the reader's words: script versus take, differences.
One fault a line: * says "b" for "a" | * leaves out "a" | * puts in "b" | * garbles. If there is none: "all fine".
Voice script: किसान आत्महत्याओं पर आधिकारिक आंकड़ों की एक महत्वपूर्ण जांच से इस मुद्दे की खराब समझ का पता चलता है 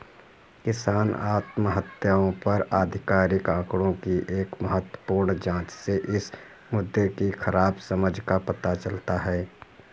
all fine